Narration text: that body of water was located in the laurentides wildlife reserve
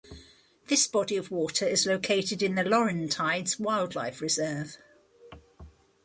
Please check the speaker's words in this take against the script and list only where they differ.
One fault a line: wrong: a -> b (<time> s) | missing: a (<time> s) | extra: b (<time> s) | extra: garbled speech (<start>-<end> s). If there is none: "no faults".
wrong: that -> this (0.7 s)
wrong: was -> is (1.6 s)